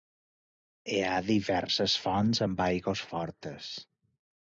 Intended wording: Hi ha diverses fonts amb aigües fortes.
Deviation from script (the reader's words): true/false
false